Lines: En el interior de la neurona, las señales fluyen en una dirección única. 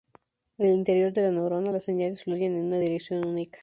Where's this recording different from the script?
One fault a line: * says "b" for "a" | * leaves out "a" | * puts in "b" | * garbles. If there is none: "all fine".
all fine